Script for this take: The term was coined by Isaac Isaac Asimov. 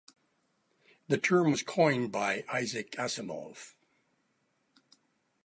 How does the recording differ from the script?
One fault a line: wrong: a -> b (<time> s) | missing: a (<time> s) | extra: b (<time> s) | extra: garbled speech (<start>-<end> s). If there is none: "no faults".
missing: Isaac (2.9 s)